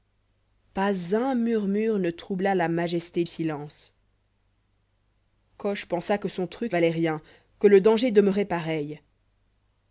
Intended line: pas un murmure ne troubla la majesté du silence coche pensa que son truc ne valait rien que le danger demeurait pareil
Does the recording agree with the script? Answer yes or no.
no